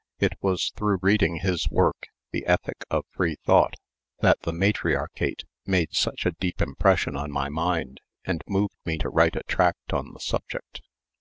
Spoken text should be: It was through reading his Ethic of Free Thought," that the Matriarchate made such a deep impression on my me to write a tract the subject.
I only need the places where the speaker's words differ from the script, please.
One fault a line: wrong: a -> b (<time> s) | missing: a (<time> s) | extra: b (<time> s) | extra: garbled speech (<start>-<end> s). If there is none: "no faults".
extra: work The (1.7 s)
extra: mind and moved (7.5 s)
extra: on (9.9 s)